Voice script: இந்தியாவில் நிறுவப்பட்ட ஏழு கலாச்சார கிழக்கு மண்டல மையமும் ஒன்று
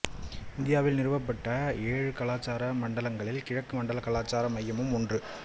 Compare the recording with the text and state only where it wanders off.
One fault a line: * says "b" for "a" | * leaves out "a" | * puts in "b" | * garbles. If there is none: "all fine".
* puts in "மண்டலங்களில்"
* puts in "கலாச்சார"